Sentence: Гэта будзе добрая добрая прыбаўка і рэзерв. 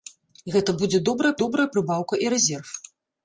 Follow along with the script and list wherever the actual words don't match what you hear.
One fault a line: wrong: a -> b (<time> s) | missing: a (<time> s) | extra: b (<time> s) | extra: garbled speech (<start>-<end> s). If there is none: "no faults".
no faults